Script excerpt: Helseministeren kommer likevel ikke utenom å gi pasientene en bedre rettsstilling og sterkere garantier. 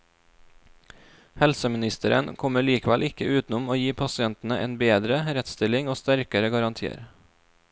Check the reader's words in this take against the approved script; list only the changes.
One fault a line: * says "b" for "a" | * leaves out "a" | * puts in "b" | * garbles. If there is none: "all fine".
all fine